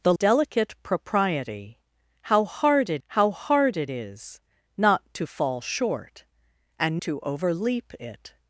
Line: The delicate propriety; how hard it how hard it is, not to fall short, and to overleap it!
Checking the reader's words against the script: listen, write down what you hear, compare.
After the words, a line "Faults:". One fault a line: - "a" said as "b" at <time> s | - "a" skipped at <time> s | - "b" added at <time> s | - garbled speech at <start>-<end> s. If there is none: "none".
The delicate propriety; how hard it how hard it is, not to fall short, and to overleap it!
Faults:
none